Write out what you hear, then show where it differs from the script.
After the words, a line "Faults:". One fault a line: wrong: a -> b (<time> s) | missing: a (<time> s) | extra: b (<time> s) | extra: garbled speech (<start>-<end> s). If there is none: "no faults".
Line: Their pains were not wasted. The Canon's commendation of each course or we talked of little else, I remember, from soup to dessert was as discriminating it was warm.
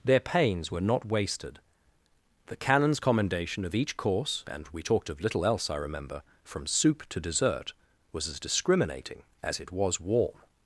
Their pains were not wasted. The Canon's commendation of each course and we talked of little else, I remember, from soup to dessert was as discriminating as it was warm.
Faults:
wrong: or -> and (4.5 s)
extra: as (9.4 s)